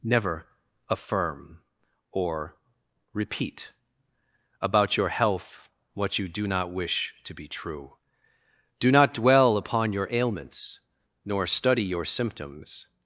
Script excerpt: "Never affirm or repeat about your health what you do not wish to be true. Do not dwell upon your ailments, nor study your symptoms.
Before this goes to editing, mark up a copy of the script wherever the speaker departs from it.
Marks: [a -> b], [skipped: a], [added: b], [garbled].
"Never affirm or repeat about your health what you do not wish to be true. Do not dwell upon your ailments, nor study your symptoms.